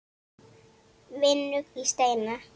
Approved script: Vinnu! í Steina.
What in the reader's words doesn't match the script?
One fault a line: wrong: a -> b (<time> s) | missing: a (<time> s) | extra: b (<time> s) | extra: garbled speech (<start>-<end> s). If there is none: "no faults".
no faults